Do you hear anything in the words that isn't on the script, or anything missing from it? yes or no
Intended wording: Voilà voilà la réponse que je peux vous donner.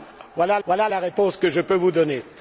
no